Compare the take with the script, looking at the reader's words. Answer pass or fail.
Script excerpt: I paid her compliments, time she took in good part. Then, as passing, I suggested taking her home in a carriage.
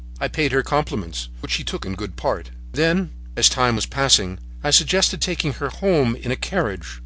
fail